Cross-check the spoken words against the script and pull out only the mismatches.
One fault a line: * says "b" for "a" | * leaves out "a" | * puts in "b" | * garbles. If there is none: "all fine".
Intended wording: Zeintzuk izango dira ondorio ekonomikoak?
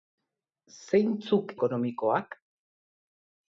* leaves out "izango dira ondorio"